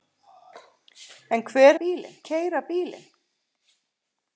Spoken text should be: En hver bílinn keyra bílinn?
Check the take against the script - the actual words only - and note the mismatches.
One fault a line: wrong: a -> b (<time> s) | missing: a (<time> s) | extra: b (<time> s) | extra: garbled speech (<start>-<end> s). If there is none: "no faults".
no faults